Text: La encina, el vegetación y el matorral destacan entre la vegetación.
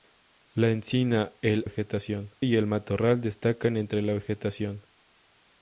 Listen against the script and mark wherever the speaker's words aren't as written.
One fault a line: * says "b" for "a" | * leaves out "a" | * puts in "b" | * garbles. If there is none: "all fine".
all fine